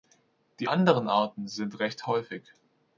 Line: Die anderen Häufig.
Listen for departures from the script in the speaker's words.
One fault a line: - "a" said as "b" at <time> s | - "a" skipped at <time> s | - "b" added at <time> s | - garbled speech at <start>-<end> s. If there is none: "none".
- "Arten sind recht" added at 1.1 s